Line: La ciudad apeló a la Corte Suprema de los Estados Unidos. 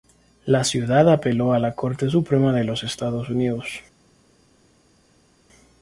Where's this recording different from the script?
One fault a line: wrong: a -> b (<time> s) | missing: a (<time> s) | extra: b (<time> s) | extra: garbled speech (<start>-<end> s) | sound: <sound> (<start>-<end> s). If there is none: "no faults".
no faults